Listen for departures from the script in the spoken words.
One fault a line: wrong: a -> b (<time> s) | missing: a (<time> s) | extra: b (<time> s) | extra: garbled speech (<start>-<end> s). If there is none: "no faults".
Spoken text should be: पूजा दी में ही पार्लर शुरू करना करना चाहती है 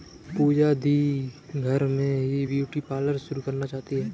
extra: घर (1.6 s)
extra: ब्यूटी (2.5 s)
missing: करना (3.7 s)